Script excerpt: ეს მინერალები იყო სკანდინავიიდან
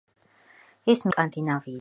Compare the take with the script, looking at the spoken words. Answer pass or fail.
fail